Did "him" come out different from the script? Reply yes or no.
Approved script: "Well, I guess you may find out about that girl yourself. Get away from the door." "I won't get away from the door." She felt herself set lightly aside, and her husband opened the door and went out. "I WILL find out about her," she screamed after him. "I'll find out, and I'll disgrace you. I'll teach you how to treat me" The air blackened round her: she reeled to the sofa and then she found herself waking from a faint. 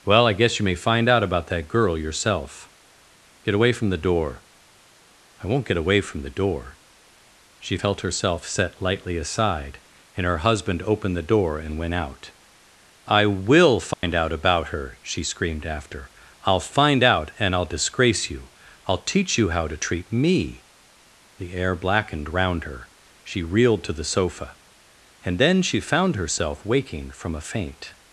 yes